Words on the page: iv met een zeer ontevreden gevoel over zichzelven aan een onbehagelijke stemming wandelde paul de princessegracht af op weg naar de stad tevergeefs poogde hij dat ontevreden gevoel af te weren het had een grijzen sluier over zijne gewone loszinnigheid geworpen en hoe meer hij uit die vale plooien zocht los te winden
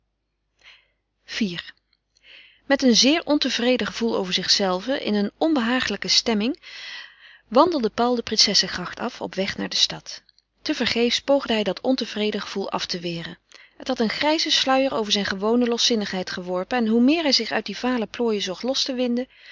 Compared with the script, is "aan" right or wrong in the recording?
wrong